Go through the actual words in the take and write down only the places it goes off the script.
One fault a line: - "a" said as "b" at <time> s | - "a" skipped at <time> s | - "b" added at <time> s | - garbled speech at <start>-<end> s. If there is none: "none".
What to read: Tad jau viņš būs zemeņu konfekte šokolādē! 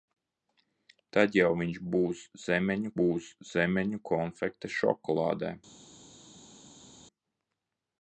- "būs zemeņu" added at 3.0 s